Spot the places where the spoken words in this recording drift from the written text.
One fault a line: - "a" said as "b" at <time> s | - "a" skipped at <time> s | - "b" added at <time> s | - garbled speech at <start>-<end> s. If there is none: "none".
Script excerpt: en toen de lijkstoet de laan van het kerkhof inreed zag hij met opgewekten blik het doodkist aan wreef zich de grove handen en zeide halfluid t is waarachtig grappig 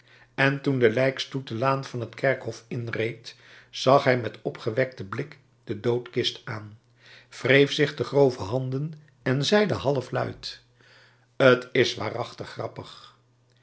- "het" said as "de" at 5.6 s